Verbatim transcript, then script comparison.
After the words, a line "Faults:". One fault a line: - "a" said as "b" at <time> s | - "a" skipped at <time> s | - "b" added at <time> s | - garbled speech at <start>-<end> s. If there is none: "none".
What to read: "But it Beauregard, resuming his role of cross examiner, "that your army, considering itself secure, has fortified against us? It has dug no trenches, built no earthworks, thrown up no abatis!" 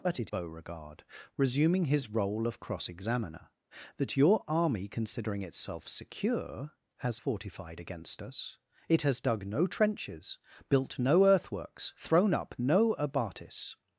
"But it Beauregard, resuming his role of cross examiner, "that your army, considering itself secure, has fortified against us? It has dug no trenches, built no earthworks, thrown up no abatis!"
Faults:
none